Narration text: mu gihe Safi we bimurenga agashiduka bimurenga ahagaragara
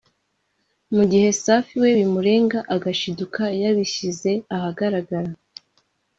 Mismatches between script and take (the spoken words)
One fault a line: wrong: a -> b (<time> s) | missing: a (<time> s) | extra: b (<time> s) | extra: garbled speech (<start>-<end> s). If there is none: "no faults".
wrong: bimurenga -> yabishyize (3.6 s)